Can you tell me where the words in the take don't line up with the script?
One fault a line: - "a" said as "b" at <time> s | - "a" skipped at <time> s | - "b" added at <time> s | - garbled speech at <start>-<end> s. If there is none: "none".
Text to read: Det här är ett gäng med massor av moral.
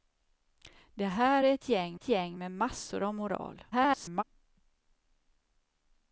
- "ett gäng" added at 1.9 s
- garbled speech at 3.7-4.2 s